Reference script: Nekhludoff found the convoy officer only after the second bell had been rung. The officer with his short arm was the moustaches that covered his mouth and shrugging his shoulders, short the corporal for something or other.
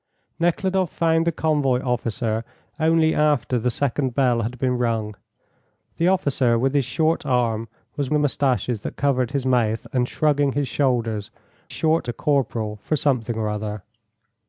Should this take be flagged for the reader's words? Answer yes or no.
no